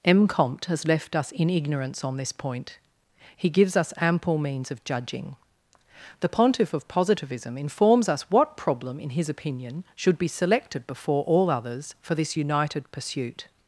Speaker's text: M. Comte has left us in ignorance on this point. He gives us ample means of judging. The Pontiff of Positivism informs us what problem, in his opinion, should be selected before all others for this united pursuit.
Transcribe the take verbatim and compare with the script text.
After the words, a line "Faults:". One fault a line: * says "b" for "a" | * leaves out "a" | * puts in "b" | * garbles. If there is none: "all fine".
M. Comte has left us in ignorance on this point. He gives us ample means of judging. The Pontiff of Positivism informs us what problem, in his opinion, should be selected before all others for this united pursuit.
Faults:
all fine